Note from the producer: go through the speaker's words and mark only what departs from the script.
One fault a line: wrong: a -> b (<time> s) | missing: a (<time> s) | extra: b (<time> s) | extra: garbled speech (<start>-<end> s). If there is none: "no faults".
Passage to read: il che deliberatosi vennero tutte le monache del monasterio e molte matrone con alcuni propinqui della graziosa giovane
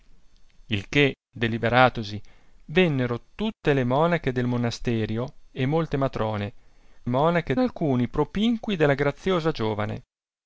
wrong: con -> monache (7.1 s)